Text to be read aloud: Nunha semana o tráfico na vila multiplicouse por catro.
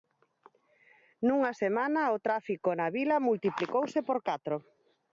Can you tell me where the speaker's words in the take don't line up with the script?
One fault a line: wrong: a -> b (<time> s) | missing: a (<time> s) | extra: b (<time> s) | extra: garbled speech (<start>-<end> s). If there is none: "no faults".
no faults